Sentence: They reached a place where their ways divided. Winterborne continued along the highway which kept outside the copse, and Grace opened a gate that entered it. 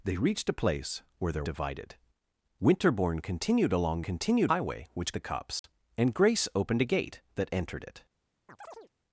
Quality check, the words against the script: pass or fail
fail